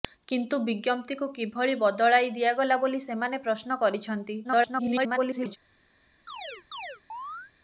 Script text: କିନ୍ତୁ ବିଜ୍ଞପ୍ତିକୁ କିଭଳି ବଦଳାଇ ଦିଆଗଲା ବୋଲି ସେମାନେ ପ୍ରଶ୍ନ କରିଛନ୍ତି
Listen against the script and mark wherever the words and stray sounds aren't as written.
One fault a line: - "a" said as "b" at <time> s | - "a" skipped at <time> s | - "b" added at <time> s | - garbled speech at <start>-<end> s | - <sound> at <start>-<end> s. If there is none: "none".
- garbled speech at 4.4-5.6 s
- chirp at 6.3-7.5 s